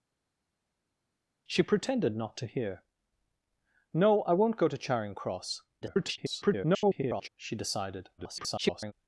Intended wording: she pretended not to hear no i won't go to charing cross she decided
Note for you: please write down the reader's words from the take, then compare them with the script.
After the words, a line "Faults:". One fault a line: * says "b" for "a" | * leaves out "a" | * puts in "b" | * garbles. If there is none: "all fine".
she pretended not to hear no i won't go to charing cross [garbled] she decided [garbled]
Faults:
* garbles
* garbles